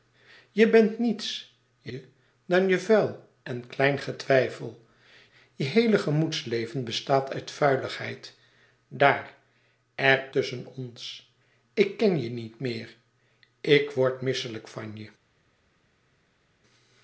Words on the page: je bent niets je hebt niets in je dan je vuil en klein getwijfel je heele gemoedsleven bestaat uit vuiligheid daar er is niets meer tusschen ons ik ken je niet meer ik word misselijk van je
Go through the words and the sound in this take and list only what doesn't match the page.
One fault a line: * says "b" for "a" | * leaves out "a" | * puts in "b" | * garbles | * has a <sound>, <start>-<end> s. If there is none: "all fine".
* leaves out "hebt niets in"
* leaves out "is niets meer"